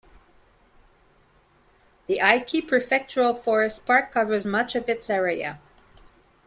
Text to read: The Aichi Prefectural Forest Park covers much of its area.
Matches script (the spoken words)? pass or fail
pass